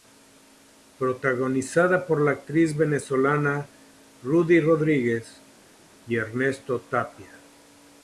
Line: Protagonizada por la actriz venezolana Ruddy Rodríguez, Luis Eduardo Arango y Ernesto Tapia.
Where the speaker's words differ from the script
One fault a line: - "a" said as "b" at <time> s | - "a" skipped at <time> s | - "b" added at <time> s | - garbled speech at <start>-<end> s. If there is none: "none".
- "Luis Eduardo Arango" skipped at 5.4 s